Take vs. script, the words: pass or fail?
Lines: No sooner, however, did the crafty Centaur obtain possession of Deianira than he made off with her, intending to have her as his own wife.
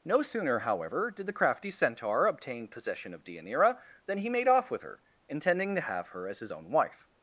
pass